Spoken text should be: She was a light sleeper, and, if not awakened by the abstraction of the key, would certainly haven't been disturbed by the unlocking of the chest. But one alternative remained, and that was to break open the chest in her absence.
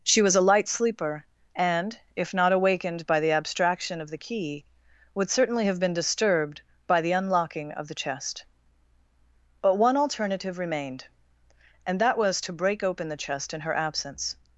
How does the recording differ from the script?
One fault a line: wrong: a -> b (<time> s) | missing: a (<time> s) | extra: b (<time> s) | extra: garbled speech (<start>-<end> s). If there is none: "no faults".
wrong: haven't -> have (5.6 s)